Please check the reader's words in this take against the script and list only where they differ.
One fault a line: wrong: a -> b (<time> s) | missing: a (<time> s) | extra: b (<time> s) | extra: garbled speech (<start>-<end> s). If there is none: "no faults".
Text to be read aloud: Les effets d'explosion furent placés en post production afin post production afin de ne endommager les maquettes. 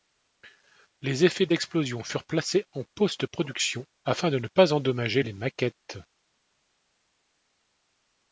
missing: post production afin (4.3 s)
extra: pas (4.5 s)